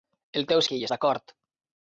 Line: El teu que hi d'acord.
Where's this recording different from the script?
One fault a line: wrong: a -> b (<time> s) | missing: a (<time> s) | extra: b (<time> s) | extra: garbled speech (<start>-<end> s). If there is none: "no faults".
no faults